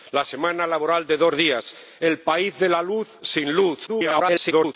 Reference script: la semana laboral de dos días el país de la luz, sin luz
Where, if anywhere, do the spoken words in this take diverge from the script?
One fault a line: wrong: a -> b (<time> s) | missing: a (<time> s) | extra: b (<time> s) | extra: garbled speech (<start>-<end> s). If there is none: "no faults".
extra: garbled speech (3.9-4.7 s)